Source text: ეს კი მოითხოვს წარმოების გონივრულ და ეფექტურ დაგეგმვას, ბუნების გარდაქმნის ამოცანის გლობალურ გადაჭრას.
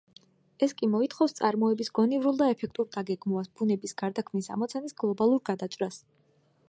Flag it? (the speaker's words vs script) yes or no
no